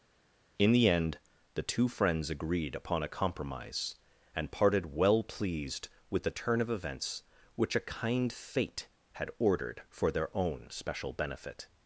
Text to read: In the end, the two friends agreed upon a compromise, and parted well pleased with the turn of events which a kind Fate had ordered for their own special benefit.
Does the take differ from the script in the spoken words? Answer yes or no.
no